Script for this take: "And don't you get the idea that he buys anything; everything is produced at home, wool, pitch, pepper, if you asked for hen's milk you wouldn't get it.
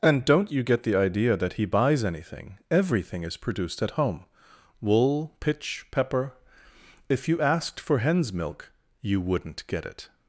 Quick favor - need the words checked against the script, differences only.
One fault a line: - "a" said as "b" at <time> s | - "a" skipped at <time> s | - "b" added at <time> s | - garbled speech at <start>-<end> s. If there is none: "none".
none